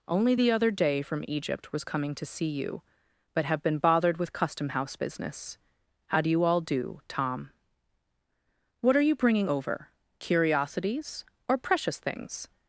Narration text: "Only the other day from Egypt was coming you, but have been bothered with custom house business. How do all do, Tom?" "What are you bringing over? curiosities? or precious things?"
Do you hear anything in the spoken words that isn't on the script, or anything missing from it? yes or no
yes